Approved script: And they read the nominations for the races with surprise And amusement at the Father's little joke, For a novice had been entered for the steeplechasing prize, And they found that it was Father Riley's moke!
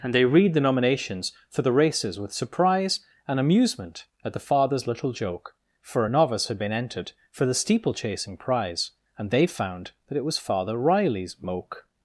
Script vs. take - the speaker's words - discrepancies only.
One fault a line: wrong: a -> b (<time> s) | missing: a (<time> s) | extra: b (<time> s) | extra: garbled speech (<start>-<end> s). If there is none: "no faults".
no faults